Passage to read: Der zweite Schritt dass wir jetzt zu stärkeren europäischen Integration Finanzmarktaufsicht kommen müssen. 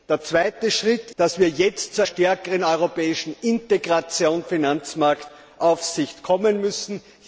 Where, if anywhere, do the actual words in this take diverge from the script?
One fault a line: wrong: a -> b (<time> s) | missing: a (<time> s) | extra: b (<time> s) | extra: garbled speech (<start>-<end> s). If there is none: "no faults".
no faults